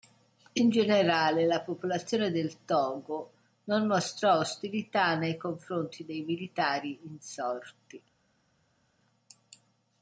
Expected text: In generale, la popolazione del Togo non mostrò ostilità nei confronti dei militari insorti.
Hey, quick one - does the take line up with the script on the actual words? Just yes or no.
yes